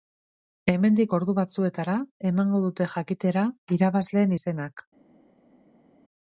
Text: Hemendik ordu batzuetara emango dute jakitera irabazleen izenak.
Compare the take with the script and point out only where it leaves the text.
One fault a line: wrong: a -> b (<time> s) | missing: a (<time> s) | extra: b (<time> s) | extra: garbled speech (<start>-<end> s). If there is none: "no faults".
no faults